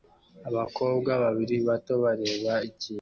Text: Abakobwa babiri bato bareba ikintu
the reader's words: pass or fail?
pass